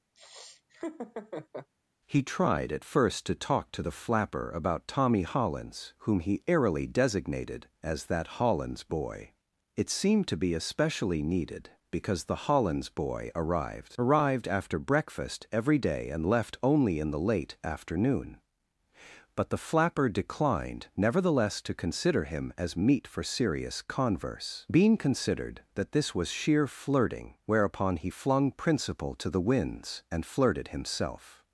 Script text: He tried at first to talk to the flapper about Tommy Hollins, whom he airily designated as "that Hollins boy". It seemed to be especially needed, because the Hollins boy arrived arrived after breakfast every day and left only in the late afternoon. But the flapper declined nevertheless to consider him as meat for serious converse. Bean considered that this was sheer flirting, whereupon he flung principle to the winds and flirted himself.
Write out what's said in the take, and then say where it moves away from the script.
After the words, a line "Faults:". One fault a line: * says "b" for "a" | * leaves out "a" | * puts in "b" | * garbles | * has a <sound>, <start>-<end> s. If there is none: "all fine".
He tried at first to talk to the flapper about Tommy Hollins, whom he airily designated as "that Hollins boy". It seemed to be especially needed, because the Hollins boy arrived arrived after breakfast every day and left only in the late afternoon. But the flapper declined nevertheless to consider him as meat for serious converse. Bean considered that this was sheer flirting, whereupon he flung principle to the winds and flirted himself.
Faults:
* has a laugh, 0.1-1.7 s